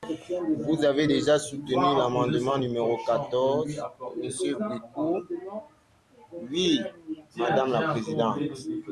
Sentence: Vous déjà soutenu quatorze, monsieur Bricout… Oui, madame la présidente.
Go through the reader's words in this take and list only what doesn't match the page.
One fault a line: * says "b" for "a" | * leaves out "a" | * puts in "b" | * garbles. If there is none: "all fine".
* puts in "avez"
* puts in "l'amendement numéro"